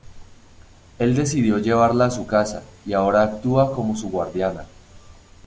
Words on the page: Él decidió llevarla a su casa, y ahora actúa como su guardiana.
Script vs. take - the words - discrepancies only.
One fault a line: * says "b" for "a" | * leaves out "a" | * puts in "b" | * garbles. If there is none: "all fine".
all fine